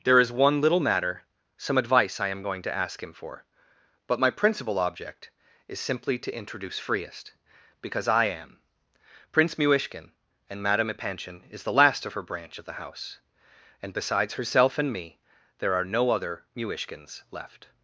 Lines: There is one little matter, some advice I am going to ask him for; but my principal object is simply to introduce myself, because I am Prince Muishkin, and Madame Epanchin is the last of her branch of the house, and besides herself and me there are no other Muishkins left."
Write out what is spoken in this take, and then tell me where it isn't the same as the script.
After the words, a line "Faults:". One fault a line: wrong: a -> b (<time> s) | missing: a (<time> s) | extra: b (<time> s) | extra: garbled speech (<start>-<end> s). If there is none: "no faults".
There is one little matter, some advice I am going to ask him for; but my principal object is simply to introduce freest, because I am Prince Muishkin, and Madame Epanchin is the last of her branch of the house, and besides herself and me there are no other Muishkins left."
Faults:
wrong: myself -> freest (6.8 s)